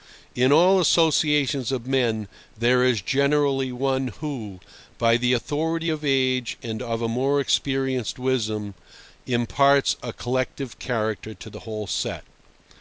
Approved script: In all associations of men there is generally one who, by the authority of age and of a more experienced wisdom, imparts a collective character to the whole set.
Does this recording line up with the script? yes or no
yes